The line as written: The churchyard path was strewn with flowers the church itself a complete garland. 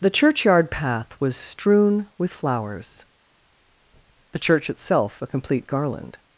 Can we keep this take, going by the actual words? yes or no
yes